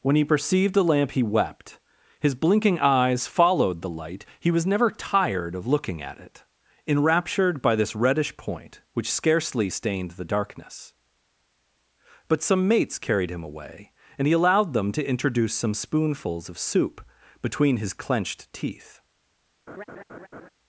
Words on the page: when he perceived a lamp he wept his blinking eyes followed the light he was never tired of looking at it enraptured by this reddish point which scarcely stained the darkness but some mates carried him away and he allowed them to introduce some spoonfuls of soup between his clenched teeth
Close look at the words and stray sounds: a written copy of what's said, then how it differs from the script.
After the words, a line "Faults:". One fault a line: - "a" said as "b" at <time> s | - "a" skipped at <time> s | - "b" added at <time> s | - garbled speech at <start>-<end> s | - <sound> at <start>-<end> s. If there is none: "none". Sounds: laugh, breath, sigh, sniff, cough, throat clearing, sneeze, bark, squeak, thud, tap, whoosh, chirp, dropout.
when he perceived the lamp he wept his blinking eyes followed the light he was never tired of looking at it enraptured by this reddish point which scarcely stained the darkness but some mates carried him away and he allowed them to introduce some spoonfuls of soup between his clenched teeth
Faults:
- "a" said as "the" at 0.7 s
- laugh at 19.7-20.5 s